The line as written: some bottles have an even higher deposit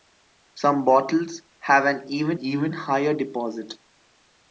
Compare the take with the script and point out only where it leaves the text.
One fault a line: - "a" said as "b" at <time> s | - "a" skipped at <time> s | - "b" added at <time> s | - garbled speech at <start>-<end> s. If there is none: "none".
- "even" added at 2.4 s